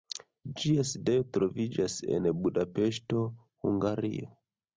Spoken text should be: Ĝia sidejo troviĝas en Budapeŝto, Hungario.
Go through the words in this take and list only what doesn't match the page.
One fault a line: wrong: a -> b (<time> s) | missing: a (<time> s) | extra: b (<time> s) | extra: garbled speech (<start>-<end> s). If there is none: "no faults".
no faults